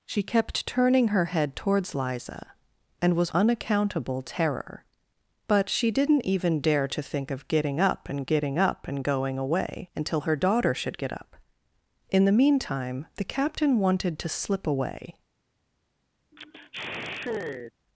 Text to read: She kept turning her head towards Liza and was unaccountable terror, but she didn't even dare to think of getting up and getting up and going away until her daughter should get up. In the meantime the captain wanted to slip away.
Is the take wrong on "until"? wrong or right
right